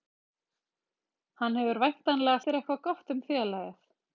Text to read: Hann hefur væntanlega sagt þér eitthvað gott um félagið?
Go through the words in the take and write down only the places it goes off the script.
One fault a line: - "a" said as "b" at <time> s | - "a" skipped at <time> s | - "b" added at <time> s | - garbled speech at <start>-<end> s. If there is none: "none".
- "sagt" skipped at 2.4 s